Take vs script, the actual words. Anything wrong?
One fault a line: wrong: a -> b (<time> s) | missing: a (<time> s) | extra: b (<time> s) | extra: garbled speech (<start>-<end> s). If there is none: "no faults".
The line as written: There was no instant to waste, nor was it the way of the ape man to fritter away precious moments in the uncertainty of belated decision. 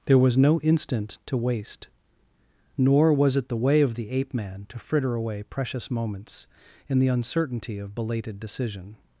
no faults